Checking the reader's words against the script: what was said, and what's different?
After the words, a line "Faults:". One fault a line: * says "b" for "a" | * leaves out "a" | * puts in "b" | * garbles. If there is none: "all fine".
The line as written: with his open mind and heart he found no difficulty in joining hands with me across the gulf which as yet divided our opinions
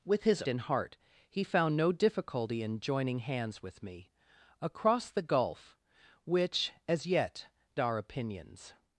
with his and heart he found no difficulty in joining hands with me across the gulf which as yet our opinions
Faults:
* leaves out "open mind"
* leaves out "divided"